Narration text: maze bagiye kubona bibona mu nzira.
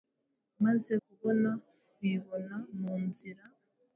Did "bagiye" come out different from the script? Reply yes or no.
yes